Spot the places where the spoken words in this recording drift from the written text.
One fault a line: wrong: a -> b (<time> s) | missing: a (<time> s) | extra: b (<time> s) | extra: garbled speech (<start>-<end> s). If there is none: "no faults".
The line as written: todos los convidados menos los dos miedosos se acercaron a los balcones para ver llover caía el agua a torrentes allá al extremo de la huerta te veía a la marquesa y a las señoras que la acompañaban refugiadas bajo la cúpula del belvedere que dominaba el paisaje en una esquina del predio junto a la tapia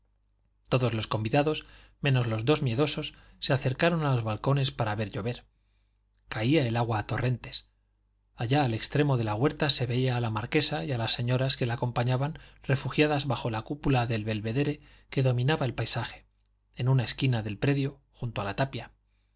wrong: te -> se (9.7 s)